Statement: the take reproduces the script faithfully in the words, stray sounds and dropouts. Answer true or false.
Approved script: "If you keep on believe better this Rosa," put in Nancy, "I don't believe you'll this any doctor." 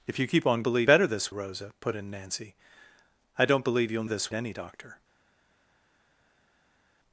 true